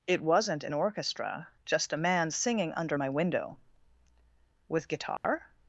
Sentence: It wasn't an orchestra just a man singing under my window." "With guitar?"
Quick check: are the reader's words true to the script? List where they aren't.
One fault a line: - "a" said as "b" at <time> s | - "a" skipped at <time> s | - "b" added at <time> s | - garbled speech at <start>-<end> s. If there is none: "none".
none